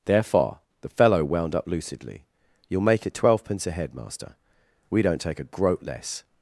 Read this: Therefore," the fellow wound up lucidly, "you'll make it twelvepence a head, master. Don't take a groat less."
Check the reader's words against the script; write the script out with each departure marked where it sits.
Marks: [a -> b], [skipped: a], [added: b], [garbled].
Therefore," the fellow wound up lucidly, "you'll make it twelvepence a head, master. [added: We] Don't take a groat less."